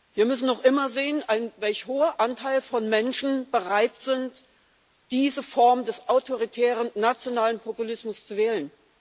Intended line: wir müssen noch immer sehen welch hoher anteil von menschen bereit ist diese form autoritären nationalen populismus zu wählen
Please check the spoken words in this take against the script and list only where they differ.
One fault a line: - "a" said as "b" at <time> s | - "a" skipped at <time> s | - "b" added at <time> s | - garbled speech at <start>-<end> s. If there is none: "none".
- "des" added at 5.8 s